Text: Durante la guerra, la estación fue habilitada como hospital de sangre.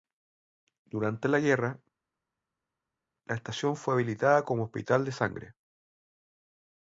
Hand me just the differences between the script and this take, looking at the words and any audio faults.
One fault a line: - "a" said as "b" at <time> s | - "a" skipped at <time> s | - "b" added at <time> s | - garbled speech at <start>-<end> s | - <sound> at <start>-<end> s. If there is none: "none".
none